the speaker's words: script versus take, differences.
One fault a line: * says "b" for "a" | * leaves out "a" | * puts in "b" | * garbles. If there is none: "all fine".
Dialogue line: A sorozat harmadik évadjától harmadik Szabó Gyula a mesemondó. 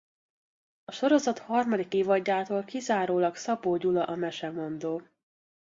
* says "kizárólag" for "harmadik"